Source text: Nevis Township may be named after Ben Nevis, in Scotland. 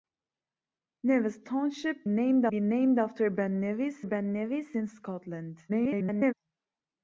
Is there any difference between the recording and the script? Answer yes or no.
yes